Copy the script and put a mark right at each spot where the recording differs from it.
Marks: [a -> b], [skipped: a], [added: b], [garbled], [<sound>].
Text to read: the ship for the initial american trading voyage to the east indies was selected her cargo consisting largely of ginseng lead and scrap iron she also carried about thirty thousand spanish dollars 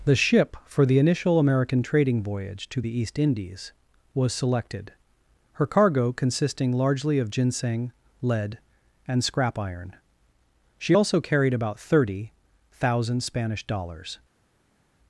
the ship for the initial american trading voyage to the east indies was selected her cargo consisting largely of ginseng lead and scrap iron she also carried about thirty thousand spanish dollars